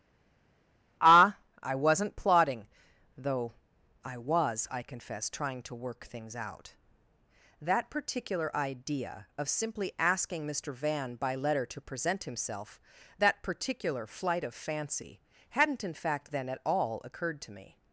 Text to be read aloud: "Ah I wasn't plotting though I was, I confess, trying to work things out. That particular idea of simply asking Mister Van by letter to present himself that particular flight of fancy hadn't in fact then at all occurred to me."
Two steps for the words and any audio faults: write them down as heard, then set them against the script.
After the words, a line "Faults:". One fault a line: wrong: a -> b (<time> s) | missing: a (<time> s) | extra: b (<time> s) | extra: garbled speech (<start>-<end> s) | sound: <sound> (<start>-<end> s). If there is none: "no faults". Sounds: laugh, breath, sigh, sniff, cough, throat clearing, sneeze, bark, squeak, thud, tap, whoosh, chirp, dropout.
"Ah I wasn't plotting though I was, I confess, trying to work things out. That particular idea of simply asking Mister Van by letter to present himself that particular flight of fancy hadn't in fact then at all occurred to me."
Faults:
no faults